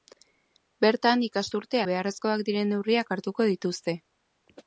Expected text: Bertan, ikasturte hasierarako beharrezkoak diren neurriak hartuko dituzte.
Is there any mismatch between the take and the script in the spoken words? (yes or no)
yes